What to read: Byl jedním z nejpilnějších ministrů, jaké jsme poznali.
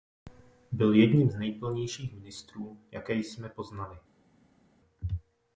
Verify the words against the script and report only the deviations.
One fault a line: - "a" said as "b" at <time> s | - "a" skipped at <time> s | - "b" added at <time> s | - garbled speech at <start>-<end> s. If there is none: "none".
none